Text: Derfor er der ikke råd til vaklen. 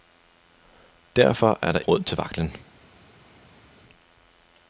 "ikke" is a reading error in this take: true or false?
true